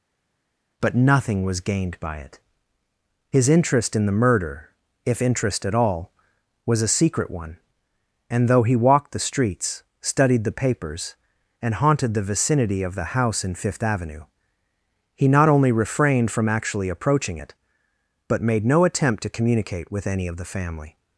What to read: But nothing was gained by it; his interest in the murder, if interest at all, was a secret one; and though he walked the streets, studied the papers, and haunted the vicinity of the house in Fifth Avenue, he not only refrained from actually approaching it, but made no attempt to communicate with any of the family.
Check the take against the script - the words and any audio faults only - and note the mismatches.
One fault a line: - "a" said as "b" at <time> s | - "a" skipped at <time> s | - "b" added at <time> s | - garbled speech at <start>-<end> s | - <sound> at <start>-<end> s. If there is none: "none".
none